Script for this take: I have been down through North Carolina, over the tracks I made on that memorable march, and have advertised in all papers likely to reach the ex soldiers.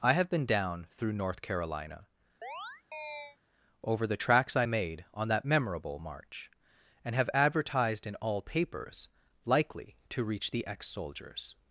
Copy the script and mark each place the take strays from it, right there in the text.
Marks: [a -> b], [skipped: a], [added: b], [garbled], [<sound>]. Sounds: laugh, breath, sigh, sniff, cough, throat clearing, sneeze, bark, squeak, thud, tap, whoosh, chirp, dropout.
I have been down through North Carolina, [chirp] over the tracks I made on that memorable march, and have advertised in all papers likely to reach the ex soldiers.